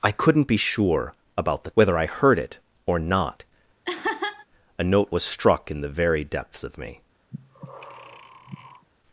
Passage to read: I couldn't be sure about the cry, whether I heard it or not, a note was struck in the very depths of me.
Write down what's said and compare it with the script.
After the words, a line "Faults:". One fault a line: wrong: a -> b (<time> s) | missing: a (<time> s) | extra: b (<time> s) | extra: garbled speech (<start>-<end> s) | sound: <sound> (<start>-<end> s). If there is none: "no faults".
I couldn't be sure about the whether I heard it or not, a note was struck in the very depths of me.
Faults:
missing: cry (1.7 s)
sound: laugh (3.8-4.5 s)
sound: breath (7.3-8.9 s)